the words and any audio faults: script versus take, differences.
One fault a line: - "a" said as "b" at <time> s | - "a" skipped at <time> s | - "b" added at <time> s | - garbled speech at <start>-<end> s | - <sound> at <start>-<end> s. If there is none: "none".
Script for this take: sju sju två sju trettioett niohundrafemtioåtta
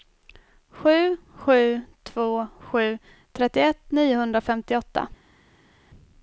none